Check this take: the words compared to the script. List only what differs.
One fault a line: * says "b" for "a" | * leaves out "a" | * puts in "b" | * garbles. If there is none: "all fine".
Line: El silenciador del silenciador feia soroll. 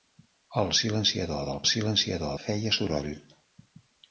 all fine